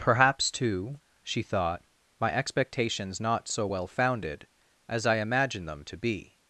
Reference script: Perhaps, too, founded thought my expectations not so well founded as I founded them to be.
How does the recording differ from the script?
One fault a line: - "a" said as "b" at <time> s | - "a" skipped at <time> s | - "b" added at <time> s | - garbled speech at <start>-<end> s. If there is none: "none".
- "founded" said as "she" at 1.2 s
- "founded" said as "imagined" at 5.2 s